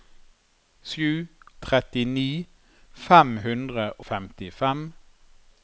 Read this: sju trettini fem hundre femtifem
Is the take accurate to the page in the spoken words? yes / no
yes